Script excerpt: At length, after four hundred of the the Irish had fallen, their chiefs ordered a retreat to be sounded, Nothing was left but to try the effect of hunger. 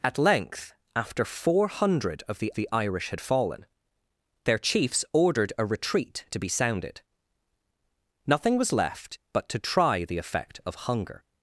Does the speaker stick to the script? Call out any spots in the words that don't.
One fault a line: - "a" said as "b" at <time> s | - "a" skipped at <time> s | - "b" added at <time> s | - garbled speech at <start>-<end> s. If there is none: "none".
none